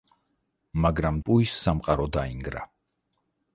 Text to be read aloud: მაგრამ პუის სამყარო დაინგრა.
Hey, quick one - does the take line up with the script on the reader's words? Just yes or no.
yes